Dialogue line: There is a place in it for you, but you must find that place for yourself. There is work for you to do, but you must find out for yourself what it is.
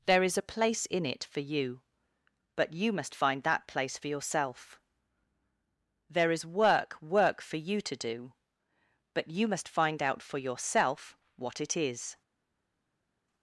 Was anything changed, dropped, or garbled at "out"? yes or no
no